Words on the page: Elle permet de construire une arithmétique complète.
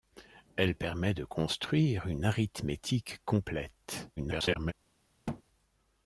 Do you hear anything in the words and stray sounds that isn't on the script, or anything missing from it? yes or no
yes